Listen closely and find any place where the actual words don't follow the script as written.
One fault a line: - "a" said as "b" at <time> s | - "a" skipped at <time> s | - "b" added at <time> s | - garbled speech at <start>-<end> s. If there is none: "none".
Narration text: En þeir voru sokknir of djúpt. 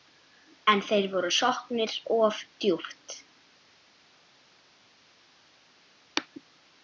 none